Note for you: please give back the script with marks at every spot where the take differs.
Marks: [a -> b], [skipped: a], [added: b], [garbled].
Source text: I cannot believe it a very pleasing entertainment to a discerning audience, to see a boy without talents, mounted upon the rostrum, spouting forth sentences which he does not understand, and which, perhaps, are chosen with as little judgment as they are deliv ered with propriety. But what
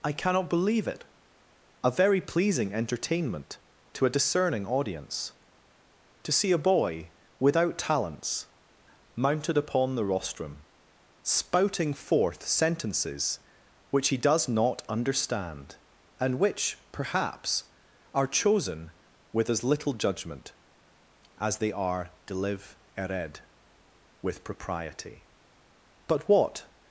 I cannot believe it a very pleasing entertainment to a discerning audience, to see a boy without talents, mounted upon the rostrum, spouting forth sentences which he does not understand, and which, perhaps, are chosen with as little judgment as they are deliv ered with propriety. But what